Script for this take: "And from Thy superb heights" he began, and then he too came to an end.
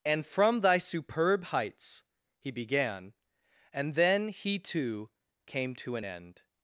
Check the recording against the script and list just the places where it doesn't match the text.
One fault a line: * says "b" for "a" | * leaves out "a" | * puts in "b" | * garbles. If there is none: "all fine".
all fine